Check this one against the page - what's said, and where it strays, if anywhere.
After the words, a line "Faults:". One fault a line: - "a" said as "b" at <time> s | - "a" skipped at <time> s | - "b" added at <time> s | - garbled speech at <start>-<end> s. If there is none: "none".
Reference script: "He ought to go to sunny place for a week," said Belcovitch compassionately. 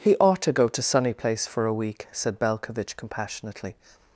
"He ought to go to sunny place for a week," said Belcovitch compassionately.
Faults:
none